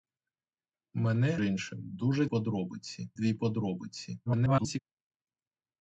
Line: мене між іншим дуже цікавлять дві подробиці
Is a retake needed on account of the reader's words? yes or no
yes